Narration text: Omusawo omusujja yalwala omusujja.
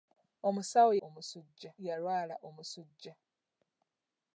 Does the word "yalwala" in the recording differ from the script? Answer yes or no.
no